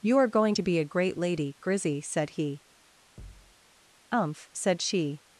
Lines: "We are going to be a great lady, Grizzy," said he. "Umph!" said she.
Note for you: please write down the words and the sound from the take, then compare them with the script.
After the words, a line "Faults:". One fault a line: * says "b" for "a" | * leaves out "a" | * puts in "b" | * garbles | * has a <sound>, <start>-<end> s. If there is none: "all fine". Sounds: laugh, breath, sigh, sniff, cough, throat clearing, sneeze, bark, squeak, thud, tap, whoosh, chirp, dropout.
"You are going to be a great lady, Grizzy," said he. "Umph!" said she.
Faults:
* says "You" for "We"
* has a thud, 3.2-3.5 s